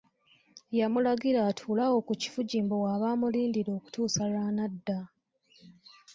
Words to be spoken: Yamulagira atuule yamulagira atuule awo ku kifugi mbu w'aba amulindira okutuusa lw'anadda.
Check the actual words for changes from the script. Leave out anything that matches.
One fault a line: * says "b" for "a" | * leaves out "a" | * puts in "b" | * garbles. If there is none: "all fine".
* leaves out "yamulagira atuule"